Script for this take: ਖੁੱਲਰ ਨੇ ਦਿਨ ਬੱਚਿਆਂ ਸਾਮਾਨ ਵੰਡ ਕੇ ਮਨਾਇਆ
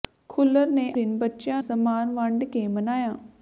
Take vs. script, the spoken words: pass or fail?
pass